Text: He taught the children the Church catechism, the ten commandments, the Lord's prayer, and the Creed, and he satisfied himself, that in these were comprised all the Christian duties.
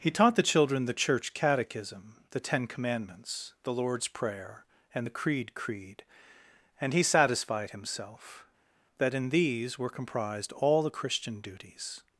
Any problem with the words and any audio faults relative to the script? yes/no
yes